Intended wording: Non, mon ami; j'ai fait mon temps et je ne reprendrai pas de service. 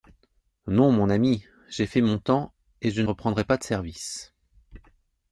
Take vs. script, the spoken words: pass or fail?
fail